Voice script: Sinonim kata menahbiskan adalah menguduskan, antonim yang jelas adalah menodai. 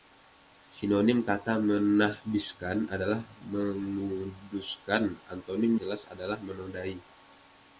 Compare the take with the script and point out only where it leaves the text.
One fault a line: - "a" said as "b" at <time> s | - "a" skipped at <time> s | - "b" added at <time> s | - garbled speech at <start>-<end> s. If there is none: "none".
- "yang" skipped at 5.7 s